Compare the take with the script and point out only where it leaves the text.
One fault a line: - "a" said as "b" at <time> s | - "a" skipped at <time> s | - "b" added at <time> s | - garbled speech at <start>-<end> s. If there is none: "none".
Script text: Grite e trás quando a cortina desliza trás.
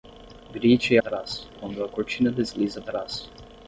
none